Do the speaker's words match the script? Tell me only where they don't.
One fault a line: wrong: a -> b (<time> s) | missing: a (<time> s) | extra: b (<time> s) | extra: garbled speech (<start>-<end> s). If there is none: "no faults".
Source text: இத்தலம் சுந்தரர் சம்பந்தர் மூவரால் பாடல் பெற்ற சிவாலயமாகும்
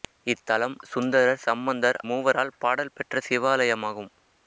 no faults